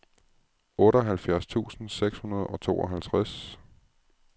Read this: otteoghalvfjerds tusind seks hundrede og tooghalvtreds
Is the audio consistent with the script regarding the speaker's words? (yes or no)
yes